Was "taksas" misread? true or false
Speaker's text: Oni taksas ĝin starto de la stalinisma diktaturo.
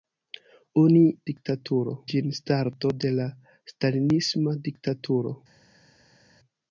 true